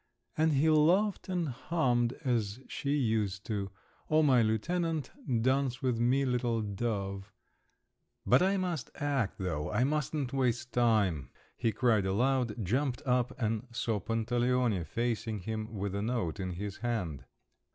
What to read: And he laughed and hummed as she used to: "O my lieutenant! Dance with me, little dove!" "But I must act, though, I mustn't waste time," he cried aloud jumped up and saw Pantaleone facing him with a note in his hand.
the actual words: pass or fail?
pass